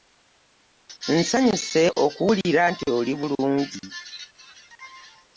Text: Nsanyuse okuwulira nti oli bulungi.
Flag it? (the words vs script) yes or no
no